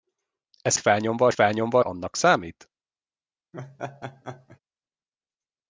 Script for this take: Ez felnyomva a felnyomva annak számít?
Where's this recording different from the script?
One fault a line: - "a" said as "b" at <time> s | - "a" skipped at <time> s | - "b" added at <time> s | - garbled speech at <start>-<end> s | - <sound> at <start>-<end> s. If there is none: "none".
- laugh at 3.5-4.6 s